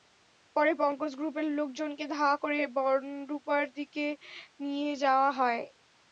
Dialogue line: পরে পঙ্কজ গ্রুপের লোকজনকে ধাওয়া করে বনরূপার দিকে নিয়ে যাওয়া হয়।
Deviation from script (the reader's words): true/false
false